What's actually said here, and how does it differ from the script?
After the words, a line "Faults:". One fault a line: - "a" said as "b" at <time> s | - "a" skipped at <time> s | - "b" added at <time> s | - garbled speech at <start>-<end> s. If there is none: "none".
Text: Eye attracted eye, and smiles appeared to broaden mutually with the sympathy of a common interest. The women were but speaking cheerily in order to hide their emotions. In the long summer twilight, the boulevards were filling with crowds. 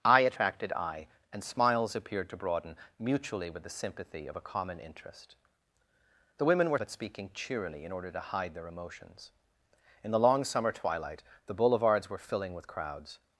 Eye attracted eye, and smiles appeared to broaden mutually with the sympathy of a common interest. The women were but speaking cheerily in order to hide their emotions. In the long summer twilight, the boulevards were filling with crowds.
Faults:
none